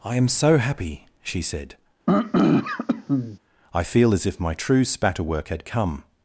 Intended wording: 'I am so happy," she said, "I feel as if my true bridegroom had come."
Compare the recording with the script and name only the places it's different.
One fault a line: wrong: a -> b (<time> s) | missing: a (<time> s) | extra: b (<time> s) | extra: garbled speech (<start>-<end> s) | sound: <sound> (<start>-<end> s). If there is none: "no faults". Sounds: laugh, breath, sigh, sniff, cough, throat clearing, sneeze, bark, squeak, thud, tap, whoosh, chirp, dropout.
sound: throat clearing (2.1-3.4 s)
wrong: bridegroom -> spatterwork (4.8 s)